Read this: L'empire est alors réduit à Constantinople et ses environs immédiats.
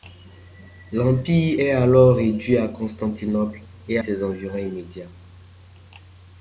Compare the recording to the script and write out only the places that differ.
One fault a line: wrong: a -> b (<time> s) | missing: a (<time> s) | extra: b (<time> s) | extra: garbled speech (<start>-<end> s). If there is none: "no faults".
no faults